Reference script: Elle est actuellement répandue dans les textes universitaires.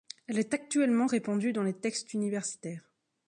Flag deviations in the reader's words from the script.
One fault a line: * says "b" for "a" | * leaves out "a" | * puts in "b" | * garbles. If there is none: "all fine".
all fine